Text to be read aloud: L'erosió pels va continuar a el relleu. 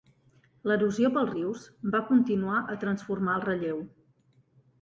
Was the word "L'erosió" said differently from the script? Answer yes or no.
no